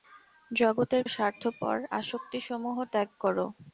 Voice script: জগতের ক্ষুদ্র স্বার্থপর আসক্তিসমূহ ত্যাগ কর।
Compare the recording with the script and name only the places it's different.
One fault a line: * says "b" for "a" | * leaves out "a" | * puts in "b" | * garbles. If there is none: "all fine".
* leaves out "ক্ষুদ্র"